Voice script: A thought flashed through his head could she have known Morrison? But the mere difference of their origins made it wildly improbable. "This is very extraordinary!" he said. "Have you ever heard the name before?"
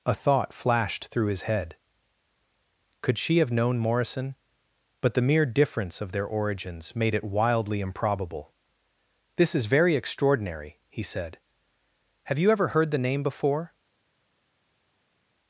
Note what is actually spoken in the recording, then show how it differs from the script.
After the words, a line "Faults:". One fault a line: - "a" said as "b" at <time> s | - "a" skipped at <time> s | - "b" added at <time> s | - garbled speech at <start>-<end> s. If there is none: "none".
A thought flashed through his head could she have known Morrison? But the mere difference of their origins made it wildly improbable. "This is very extraordinary!" he said. "Have you ever heard the name before?"
Faults:
none